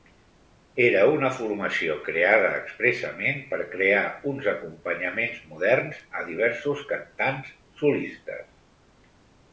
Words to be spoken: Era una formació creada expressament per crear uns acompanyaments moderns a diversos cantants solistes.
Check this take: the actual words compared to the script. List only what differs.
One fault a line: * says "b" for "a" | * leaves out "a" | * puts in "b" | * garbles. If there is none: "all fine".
all fine